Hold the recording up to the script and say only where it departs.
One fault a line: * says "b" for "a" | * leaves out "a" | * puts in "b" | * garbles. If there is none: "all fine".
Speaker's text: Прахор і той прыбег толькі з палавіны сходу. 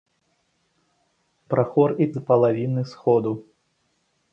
* leaves out "той прыбег толькі"